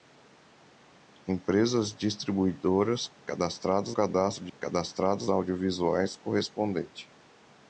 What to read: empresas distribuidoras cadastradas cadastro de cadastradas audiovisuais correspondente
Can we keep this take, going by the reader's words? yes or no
yes